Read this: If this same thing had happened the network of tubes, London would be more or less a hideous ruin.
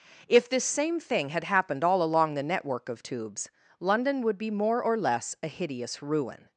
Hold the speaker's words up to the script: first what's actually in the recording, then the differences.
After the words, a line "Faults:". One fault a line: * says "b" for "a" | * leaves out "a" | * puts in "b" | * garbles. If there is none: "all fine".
If this same thing had happened all along the network of tubes, London would be more or less a hideous ruin.
Faults:
* puts in "all along"